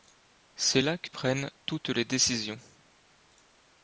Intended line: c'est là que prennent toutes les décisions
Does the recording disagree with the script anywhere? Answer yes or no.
no